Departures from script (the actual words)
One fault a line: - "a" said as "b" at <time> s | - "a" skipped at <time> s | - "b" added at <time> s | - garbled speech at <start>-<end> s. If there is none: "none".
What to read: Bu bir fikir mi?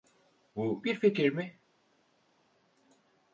none